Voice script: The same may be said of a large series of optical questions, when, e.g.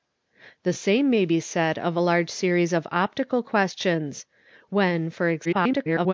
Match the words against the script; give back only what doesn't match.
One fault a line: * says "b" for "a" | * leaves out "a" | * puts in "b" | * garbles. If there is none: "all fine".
* garbles